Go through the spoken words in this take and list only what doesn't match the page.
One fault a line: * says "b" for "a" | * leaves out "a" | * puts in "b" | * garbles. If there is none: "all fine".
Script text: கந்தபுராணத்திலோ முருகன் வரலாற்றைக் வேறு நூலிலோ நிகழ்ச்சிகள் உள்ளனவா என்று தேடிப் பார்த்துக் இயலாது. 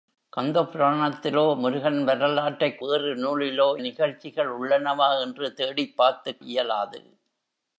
all fine